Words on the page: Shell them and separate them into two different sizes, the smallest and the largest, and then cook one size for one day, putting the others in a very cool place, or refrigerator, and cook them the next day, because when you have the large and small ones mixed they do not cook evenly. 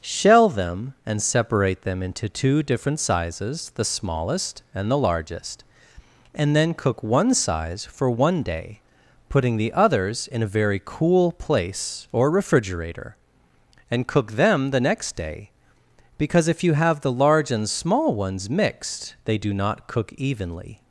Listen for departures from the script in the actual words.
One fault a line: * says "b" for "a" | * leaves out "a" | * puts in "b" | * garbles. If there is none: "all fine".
* says "if" for "when"